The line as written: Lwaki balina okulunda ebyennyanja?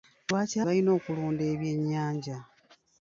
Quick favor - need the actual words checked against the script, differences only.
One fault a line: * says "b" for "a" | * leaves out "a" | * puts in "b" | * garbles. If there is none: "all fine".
all fine